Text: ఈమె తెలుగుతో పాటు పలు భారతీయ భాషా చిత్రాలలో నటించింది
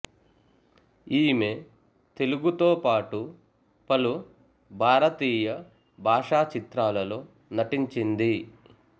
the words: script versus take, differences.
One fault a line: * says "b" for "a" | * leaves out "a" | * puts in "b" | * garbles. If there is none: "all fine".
all fine